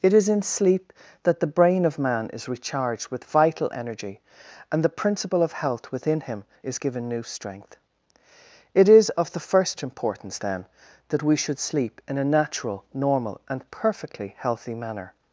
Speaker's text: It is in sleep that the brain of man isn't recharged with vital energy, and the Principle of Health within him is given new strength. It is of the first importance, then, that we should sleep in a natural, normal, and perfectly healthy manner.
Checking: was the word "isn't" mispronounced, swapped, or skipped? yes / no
yes